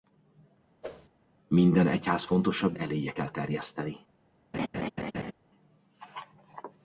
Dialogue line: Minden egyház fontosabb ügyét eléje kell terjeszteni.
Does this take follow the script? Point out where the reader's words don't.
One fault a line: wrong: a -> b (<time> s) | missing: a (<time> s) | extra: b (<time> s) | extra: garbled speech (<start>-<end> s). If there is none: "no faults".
missing: ügyét (2.8 s)